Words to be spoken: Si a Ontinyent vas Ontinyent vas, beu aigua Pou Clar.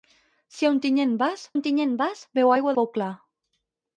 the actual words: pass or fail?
pass